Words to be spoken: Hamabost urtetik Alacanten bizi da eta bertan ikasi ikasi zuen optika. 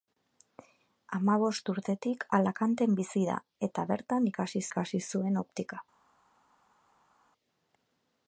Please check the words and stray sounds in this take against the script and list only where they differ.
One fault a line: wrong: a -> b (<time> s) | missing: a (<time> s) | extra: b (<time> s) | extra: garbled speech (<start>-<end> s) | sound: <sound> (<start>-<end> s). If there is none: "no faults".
no faults